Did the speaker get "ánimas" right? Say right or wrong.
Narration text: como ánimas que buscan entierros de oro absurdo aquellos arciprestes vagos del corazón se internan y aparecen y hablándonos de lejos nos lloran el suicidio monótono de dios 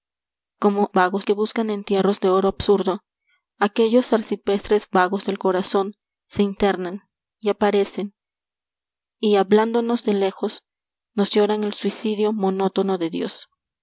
wrong